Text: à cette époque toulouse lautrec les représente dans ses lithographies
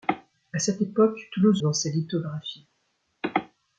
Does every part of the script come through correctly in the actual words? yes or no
no